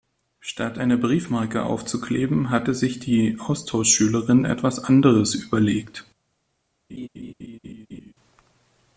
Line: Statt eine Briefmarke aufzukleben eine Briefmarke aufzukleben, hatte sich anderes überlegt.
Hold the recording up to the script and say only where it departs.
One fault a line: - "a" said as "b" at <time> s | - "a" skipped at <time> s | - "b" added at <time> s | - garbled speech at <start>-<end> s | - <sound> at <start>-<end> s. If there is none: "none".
- "eine Briefmarke aufzukleben hatte sich" said as "hatte sich die Austauschschülerin etwas" at 2.5 s
- laugh at 6.9-8.1 s